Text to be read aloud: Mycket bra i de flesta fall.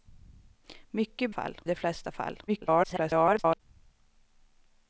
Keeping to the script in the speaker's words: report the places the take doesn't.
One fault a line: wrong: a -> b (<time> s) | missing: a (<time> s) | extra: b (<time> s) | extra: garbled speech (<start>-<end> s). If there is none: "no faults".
wrong: bra -> fall (1.3 s)
extra: garbled speech (2.5-3.6 s)